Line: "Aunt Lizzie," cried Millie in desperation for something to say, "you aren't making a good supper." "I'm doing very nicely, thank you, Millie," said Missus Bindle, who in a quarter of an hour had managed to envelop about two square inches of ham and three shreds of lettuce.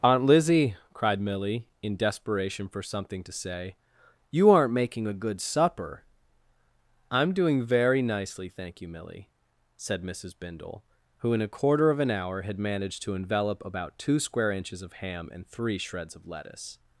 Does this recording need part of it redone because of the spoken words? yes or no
no